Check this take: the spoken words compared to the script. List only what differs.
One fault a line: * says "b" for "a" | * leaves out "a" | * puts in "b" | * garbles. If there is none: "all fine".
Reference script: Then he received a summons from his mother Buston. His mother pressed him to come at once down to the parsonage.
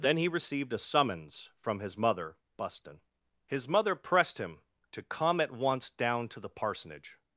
all fine